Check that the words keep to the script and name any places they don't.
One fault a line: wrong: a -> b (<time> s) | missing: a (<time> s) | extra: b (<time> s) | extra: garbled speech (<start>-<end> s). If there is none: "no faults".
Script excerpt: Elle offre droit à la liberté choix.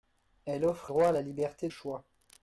no faults